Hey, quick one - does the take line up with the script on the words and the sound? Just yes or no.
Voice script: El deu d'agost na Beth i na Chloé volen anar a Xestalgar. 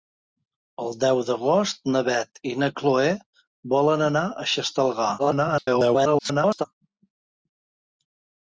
no